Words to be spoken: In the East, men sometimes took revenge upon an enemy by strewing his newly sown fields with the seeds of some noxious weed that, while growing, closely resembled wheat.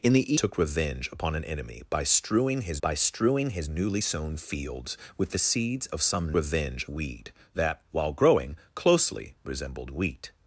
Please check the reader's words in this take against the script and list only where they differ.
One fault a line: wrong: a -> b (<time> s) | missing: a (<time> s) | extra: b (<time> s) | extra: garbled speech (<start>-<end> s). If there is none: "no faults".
missing: East men sometimes (0.3 s)
extra: by strewing his (2.8 s)
wrong: noxious -> revenge (6.3 s)